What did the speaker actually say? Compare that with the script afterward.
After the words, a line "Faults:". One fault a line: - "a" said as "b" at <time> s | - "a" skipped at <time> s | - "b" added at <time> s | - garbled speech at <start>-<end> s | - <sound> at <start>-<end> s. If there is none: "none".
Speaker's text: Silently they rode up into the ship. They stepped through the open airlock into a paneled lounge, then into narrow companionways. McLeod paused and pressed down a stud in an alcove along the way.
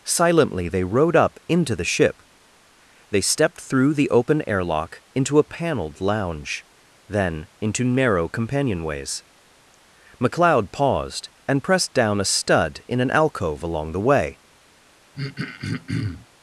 Silently they rode up into the ship. They stepped through the open airlock into a paneled lounge, then into narrow companionways. McLeod paused and pressed down a stud in an alcove along the way.
Faults:
- throat clearing at 15.1-16.3 s